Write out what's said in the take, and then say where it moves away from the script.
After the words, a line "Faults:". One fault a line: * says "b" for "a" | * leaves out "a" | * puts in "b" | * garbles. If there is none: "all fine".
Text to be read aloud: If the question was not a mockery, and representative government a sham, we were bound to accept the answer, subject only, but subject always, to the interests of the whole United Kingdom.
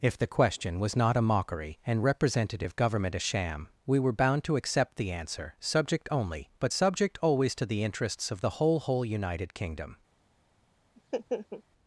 If the question was not a mockery, and representative government a sham, we were bound to accept the answer, subject only, but subject always, to the interests of the whole whole United Kingdom.
Faults:
* puts in "whole"